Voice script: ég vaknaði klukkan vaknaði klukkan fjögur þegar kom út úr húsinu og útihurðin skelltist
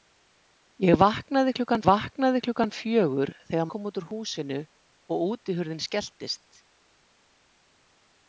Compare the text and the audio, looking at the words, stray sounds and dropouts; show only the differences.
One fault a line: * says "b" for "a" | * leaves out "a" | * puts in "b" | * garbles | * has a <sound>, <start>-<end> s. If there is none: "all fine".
all fine